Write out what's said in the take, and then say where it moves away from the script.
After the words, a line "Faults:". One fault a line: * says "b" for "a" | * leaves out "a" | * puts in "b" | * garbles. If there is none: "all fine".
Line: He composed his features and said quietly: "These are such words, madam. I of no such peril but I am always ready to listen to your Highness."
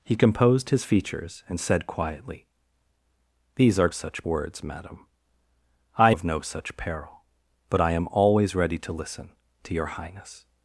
He composed his features and said quietly: "These are such words, madam. I of no such peril but I am always ready to listen to your Highness."
Faults:
all fine